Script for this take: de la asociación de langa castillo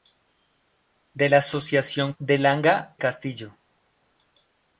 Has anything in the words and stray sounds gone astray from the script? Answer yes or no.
no